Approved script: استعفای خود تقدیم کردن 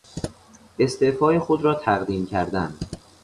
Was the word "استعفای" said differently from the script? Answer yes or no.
no